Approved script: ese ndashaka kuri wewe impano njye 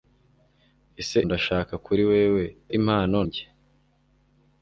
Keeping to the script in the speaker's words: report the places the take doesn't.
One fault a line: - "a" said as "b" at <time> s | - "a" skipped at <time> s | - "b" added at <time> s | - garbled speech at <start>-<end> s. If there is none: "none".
none